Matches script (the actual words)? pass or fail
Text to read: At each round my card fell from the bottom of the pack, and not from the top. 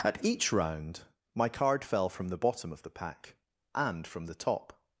fail